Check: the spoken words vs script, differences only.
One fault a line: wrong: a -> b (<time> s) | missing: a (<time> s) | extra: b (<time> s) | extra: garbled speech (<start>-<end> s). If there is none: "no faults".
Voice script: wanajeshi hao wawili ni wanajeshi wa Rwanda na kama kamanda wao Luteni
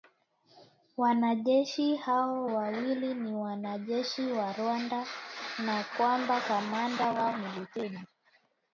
wrong: kama -> kwamba (6.0 s)
extra: ni (7.3 s)